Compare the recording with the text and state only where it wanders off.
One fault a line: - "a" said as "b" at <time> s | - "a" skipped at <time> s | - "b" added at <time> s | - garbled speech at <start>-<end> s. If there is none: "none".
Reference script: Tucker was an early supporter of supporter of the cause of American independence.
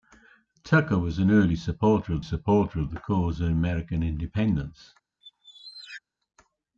none